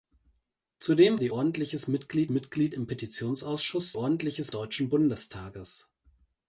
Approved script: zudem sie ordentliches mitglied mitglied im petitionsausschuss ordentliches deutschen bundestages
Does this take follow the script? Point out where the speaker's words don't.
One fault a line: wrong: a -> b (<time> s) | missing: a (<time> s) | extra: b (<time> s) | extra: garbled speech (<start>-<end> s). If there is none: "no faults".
no faults